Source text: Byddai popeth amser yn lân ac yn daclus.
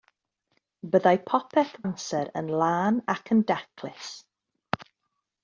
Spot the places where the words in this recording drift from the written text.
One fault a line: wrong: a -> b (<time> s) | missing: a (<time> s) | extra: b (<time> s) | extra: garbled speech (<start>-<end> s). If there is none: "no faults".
no faults